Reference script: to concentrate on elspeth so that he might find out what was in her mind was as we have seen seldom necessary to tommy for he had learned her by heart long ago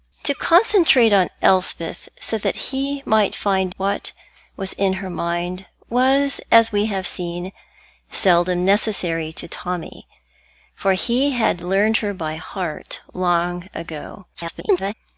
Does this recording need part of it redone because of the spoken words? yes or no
yes